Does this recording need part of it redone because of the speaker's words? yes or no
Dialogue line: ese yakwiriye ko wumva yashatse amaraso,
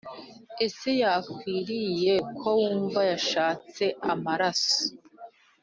no